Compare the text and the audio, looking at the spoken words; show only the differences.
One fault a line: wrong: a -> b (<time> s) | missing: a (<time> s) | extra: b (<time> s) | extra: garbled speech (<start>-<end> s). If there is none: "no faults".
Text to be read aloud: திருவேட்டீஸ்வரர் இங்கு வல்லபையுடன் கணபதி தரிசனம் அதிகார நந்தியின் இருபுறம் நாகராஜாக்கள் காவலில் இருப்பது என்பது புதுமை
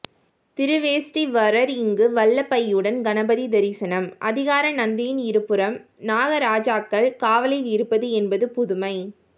no faults